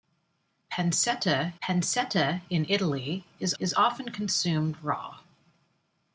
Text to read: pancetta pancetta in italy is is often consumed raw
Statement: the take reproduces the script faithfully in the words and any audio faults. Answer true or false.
true